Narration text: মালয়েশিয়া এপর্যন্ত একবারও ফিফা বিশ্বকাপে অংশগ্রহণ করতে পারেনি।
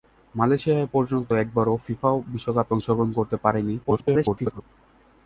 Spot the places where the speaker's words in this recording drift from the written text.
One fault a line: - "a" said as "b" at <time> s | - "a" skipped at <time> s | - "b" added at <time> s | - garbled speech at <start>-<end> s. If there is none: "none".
- garbled speech at 3.8-4.6 s